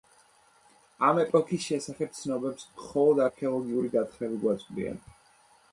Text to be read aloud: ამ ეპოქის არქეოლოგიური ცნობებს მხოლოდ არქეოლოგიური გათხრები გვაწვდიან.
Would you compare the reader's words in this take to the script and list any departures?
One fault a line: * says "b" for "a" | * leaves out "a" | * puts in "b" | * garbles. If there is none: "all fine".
* says "შესახებ" for "არქეოლოგიური"